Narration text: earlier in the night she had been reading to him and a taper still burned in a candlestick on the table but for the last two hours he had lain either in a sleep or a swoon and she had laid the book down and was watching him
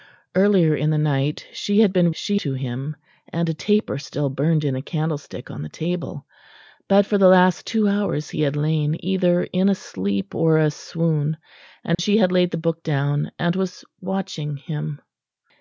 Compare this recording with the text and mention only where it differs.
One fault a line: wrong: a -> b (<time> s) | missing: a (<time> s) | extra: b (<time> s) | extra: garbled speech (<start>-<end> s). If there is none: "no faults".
wrong: reading -> she (2.1 s)